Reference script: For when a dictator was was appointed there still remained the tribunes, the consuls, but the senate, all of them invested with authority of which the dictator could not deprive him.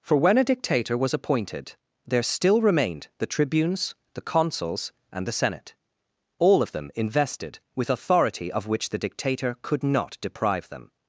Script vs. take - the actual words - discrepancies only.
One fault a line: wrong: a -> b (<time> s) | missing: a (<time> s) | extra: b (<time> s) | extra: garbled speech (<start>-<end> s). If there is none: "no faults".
missing: was (1.1 s)
wrong: but -> and (5.1 s)
wrong: him -> them (10.7 s)